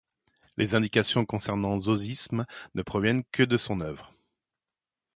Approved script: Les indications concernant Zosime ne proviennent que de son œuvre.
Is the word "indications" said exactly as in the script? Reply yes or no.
yes